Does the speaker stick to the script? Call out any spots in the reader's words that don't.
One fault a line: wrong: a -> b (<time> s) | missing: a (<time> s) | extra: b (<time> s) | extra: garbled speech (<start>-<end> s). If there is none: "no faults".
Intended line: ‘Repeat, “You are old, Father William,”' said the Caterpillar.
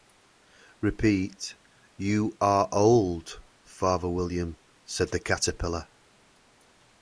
no faults